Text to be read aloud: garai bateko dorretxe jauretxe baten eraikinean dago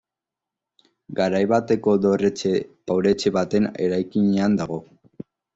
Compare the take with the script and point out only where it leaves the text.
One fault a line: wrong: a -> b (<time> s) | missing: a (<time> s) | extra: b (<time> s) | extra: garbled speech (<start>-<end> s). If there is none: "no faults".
no faults